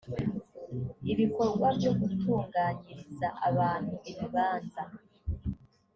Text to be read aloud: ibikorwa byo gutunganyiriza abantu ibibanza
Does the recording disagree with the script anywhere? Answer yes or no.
no